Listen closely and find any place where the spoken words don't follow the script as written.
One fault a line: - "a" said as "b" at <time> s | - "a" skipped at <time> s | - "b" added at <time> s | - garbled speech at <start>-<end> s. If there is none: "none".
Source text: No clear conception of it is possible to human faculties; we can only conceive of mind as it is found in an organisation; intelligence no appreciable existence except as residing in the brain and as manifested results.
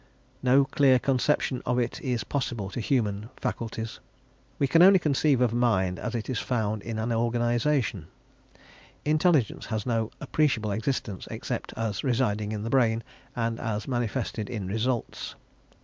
- "has" added at 9.7 s
- "in" added at 14.5 s